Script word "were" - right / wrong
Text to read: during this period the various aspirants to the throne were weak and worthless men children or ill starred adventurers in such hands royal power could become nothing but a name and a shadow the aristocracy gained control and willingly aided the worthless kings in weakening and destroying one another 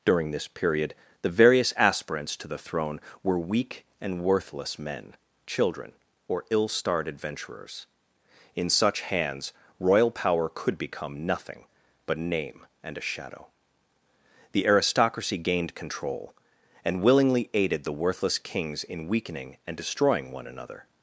right